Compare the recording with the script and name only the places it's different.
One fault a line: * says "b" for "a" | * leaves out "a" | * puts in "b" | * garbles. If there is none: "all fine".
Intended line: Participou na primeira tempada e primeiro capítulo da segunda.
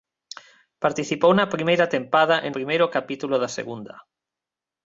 all fine